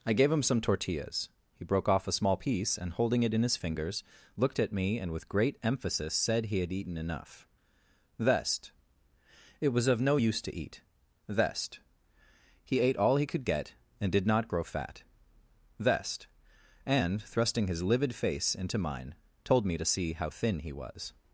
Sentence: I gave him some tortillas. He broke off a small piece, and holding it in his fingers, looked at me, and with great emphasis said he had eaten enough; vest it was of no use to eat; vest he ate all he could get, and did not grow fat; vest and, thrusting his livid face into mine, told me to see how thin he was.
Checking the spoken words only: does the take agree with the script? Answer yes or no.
yes